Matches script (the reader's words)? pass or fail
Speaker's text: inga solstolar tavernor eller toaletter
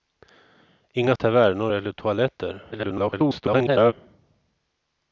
fail